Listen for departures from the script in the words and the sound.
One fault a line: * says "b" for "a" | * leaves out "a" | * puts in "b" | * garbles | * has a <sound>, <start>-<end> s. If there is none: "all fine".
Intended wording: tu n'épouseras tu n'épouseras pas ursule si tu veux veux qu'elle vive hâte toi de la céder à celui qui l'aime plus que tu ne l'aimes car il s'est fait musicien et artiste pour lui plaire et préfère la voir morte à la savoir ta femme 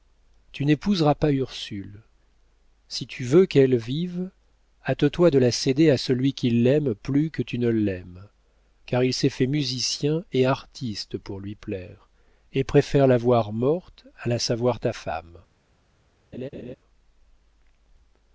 * leaves out "tu n'épouseras"
* leaves out "veux"
* has a laugh, 16.3-16.8 s